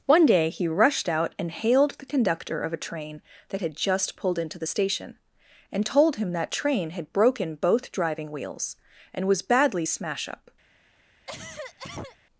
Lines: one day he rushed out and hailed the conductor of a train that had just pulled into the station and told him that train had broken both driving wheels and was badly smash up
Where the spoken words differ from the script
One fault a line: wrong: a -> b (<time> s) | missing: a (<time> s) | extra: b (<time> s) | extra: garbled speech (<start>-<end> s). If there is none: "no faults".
no faults